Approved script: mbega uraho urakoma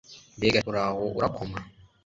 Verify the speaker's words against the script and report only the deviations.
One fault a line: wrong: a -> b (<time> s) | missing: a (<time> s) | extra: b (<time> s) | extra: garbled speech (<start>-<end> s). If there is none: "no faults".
no faults